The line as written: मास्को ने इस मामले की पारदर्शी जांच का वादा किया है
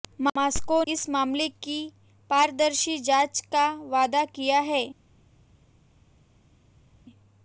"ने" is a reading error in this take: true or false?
true